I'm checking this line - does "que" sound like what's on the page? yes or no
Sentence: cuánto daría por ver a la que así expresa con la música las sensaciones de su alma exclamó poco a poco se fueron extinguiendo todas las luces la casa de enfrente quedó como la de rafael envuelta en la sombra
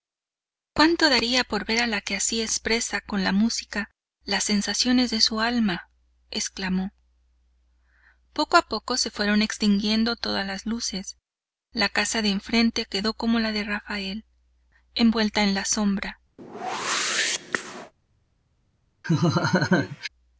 yes